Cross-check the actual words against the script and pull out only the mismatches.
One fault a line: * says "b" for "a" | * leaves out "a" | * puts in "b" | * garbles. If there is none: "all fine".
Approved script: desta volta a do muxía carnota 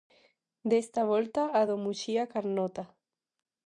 all fine